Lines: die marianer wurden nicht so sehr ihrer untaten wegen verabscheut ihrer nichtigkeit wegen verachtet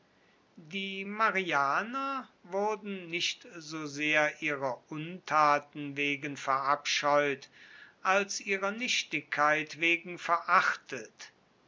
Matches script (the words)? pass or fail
fail